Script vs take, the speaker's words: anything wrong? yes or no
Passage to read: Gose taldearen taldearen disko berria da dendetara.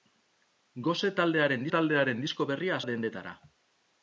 no